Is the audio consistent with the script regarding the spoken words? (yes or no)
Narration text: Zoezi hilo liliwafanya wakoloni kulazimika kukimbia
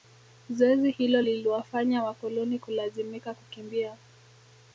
yes